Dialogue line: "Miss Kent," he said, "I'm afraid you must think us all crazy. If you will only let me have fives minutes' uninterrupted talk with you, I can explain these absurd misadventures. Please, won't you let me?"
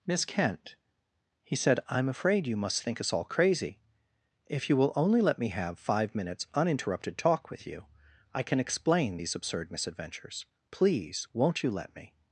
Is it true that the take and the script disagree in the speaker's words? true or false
true